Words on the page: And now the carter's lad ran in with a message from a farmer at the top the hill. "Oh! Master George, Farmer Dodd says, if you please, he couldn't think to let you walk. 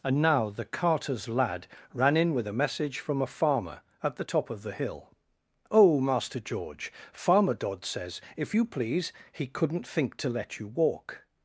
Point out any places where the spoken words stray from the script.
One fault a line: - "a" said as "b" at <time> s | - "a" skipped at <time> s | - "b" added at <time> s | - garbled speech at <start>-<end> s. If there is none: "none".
- "of" added at 4.5 s